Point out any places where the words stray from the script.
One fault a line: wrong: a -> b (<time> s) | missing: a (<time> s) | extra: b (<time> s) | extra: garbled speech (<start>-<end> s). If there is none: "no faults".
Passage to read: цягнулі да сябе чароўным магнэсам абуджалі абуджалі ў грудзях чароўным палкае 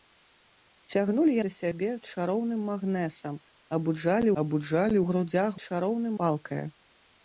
no faults